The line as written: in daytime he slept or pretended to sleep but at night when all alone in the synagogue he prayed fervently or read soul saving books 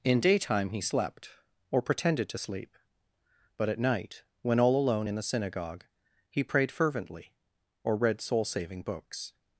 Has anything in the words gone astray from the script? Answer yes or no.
no